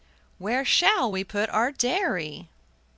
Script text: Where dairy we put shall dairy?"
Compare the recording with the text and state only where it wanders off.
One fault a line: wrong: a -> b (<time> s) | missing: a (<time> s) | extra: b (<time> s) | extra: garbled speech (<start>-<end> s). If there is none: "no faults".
wrong: dairy -> shall (0.7 s)
wrong: shall -> our (1.5 s)